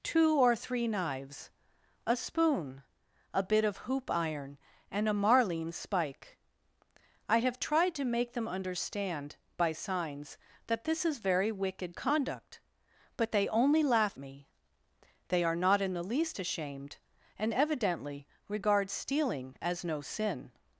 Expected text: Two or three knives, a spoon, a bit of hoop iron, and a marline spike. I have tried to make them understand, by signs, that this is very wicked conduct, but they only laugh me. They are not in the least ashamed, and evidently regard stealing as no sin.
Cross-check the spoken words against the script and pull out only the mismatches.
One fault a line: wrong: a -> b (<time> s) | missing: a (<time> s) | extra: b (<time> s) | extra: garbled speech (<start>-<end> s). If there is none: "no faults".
no faults